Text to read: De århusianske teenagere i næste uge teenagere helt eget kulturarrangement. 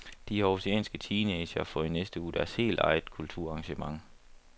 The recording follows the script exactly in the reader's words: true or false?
false